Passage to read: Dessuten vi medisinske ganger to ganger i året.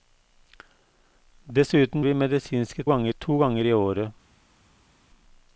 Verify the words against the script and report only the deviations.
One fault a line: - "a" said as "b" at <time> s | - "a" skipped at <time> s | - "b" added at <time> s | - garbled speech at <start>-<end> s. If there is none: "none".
none